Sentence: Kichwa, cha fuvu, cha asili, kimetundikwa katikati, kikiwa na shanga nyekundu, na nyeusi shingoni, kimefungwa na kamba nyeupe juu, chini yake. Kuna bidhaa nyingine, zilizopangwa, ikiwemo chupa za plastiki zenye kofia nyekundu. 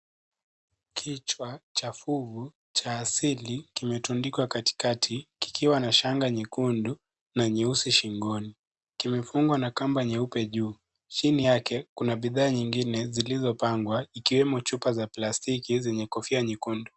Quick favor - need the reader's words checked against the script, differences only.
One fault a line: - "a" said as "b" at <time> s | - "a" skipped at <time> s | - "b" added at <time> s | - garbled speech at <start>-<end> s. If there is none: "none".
none